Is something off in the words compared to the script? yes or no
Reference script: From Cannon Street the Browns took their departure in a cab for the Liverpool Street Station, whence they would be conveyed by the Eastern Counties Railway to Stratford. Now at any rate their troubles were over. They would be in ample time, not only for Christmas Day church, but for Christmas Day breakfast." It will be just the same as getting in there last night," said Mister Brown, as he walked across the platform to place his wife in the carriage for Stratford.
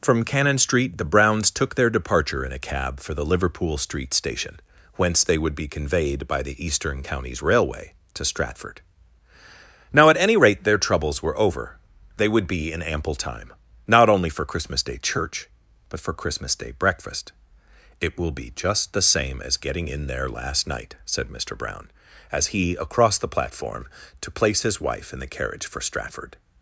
yes